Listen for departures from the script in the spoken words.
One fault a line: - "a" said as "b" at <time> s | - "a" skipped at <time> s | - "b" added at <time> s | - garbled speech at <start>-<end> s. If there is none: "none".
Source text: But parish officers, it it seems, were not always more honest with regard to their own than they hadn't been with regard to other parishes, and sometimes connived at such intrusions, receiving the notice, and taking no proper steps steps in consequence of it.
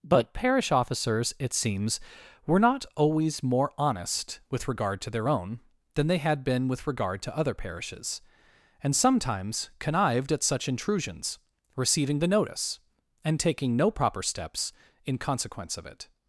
- "it" skipped at 1.5 s
- "hadn't" said as "had" at 6.2 s
- "steps" skipped at 14.7 s